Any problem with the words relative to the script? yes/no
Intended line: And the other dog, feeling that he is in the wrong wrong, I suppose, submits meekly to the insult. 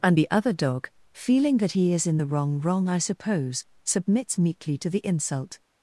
no